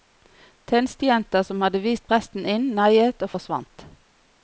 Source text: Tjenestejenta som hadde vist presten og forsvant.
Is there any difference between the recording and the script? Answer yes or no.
yes